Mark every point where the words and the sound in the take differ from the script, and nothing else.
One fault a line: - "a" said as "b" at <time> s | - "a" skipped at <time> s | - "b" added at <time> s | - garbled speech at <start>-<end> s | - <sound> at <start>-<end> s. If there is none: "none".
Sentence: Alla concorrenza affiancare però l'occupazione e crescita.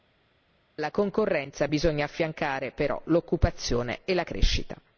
- "bisogna" added at 1.7 s
- "la" added at 4.1 s